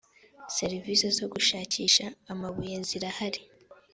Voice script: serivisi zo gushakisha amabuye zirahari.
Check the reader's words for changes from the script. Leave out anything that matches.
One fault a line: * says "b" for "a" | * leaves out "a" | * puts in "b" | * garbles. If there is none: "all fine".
all fine